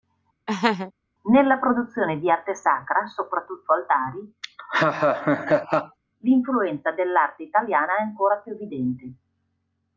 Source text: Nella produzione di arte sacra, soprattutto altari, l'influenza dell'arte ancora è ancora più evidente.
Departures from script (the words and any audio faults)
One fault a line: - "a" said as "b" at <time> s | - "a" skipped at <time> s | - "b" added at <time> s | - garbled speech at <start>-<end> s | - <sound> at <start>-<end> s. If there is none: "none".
- laugh at 0.5-0.9 s
- laugh at 4.4-6.0 s
- "ancora" said as "italiana" at 7.4 s